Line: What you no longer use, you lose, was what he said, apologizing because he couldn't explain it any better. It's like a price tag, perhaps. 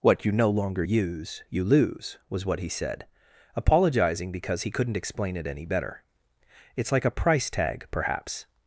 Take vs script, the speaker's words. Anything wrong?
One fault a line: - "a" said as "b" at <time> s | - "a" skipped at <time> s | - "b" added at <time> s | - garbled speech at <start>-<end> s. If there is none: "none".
none